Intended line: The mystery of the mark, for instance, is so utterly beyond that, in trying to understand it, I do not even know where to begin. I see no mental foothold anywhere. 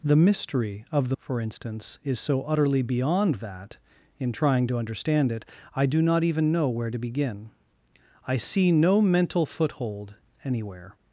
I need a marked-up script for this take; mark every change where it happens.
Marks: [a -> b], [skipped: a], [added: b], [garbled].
The mystery of the [skipped: mark,] for instance, is so utterly beyond that, in trying to understand it, I do not even know where to begin. I see no mental foothold anywhere.